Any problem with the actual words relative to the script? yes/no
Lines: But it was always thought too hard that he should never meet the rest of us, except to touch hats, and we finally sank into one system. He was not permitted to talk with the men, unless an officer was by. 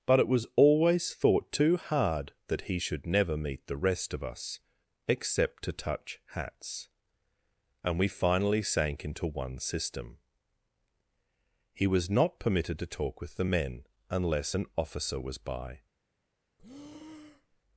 no